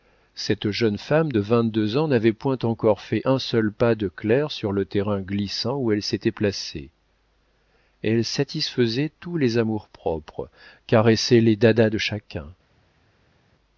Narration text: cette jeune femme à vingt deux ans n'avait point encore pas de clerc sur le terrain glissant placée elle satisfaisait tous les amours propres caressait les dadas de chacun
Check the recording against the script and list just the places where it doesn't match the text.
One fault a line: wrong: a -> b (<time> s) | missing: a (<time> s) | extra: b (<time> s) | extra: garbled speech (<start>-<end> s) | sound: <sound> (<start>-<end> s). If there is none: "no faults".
wrong: à -> de (1.3 s)
extra: fait un seul (3.0 s)
extra: où elle s'était (5.8 s)